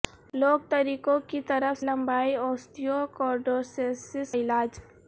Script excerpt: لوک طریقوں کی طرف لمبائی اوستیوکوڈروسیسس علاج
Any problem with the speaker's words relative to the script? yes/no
no